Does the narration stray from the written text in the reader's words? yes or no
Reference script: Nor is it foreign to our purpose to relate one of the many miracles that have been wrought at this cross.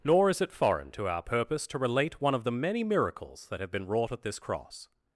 no